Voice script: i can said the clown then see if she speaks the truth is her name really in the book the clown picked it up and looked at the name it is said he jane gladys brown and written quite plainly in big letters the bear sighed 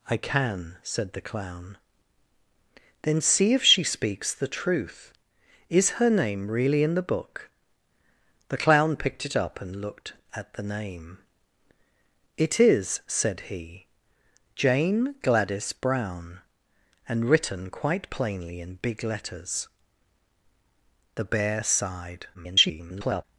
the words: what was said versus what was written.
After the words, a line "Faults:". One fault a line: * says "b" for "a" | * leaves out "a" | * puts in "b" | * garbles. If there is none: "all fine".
i can said the clown then see if she speaks the truth is her name really in the book the clown picked it up and looked at the name it is said he jane gladys brown and written quite plainly in big letters the bear sighed [garbled]
Faults:
* garbles